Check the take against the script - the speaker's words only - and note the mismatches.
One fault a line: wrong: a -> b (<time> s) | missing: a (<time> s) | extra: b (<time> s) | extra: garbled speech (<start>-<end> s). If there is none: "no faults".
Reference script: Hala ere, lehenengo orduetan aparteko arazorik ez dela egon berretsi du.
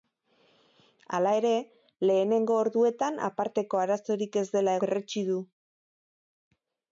missing: egon (4.8 s)